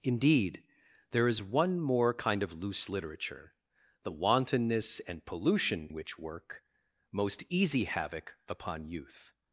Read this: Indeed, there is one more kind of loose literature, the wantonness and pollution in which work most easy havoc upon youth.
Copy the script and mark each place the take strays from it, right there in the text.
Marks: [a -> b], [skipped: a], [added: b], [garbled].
Indeed, there is one more kind of loose literature, the wantonness and pollution [skipped: in] which work most easy havoc upon youth.